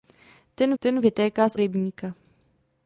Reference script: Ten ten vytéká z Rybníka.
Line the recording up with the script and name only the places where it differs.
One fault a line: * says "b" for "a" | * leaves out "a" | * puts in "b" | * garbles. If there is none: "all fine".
all fine